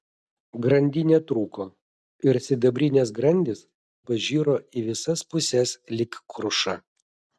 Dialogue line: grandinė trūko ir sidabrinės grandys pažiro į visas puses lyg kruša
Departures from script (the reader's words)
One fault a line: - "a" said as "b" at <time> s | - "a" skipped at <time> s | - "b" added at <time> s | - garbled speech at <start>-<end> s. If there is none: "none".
none